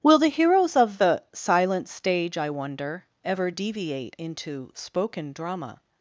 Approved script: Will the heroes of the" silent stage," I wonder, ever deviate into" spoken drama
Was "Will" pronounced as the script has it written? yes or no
yes